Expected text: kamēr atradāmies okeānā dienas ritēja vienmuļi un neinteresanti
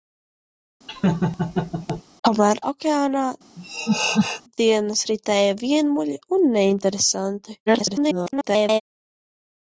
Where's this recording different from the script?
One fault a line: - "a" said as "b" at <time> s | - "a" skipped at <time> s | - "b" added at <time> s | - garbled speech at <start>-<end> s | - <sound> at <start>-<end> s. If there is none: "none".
- laugh at 0.9-2.0 s
- "atradāmies" skipped at 2.6 s
- laugh at 3.6-4.4 s
- garbled speech at 7.7-8.8 s